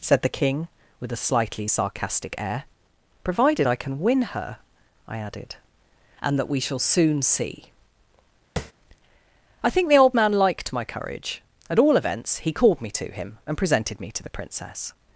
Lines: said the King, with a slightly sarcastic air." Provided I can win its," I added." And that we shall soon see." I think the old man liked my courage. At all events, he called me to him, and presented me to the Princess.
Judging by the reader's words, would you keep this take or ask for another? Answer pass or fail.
fail